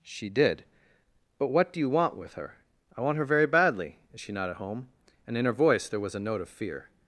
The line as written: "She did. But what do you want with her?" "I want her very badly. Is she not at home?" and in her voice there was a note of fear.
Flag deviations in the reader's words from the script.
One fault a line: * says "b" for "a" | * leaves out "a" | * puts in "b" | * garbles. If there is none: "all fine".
all fine